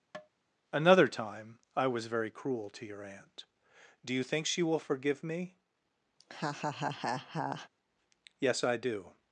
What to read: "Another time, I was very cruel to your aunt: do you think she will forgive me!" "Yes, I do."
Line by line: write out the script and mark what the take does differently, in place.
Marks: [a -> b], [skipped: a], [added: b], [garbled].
"Another time, I was very cruel to your aunt: do you think she will forgive me!" "Yes, I do."